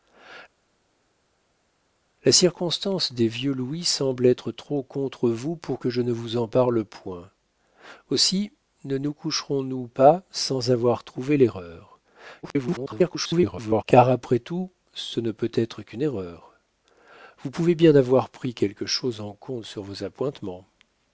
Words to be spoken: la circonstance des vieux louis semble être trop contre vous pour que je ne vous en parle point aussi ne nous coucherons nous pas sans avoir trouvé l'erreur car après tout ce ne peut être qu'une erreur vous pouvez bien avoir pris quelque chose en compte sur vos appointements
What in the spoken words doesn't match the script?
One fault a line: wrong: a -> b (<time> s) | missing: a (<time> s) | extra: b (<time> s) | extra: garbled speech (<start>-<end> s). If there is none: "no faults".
extra: garbled speech (12.4-13.8 s)